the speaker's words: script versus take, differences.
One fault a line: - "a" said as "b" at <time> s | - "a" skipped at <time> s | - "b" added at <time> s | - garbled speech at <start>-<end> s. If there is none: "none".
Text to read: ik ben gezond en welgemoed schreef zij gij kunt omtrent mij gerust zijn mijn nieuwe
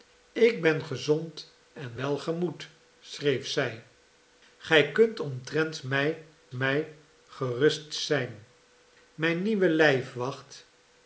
- "mij" added at 6.5 s